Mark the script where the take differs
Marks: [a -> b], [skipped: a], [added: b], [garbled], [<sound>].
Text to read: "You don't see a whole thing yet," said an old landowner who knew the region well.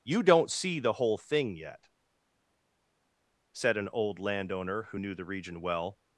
"You don't see [a -> the] whole thing yet," said an old landowner who knew the region well.